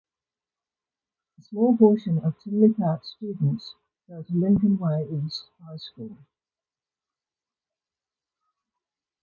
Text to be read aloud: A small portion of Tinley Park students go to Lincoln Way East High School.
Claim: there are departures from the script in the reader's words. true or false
false